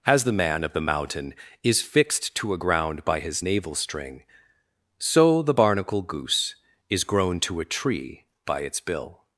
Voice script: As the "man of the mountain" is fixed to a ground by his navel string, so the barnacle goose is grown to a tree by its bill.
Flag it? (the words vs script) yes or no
no